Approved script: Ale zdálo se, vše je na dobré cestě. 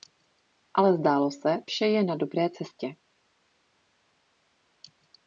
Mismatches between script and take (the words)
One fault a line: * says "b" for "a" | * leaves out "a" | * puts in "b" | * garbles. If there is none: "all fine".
all fine